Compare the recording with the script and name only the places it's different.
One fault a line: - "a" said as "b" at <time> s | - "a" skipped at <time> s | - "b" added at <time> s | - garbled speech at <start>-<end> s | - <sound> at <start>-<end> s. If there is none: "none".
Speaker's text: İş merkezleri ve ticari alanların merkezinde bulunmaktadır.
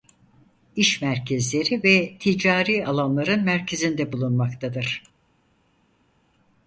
none